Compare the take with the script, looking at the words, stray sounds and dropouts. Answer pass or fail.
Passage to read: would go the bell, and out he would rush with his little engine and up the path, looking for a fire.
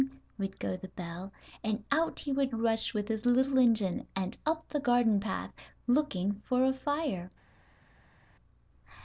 fail